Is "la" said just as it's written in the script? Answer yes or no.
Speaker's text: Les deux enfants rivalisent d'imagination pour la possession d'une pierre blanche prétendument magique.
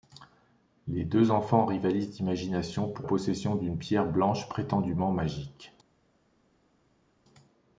no